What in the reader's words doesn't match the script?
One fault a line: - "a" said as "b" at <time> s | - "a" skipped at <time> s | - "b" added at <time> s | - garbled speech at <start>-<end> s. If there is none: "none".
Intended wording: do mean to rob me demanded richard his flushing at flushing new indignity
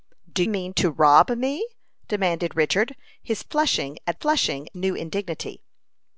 none